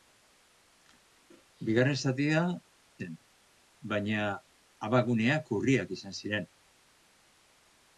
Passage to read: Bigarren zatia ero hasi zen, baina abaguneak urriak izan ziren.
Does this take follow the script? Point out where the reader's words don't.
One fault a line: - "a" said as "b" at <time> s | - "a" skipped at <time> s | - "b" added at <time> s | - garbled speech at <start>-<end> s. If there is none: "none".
- "ero hasi" skipped at 2.4 s